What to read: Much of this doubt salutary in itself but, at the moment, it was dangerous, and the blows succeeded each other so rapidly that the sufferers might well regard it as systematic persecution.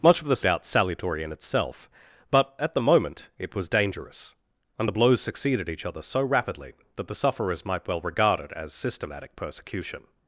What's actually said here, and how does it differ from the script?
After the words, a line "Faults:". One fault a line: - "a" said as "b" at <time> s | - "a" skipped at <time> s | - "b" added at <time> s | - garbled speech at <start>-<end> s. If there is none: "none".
Much of this doubt salutary in itself but, at the moment, it was dangerous, and the blows succeeded each other so rapidly that the sufferers might well regard it as systematic persecution.
Faults:
none